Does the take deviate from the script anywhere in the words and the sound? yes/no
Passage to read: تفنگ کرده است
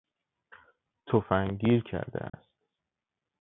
yes